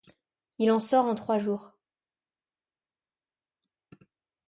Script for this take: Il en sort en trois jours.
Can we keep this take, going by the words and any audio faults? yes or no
yes